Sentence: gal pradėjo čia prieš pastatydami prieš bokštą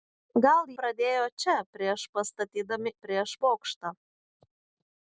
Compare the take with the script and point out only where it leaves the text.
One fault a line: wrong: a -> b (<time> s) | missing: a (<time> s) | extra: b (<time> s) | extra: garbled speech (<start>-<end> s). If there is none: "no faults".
no faults